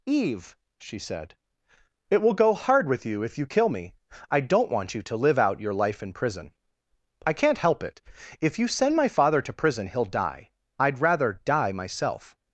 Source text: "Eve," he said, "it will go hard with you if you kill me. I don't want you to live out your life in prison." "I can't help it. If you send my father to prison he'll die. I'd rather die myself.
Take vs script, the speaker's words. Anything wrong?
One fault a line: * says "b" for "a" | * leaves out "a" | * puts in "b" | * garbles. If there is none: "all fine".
* says "she" for "he"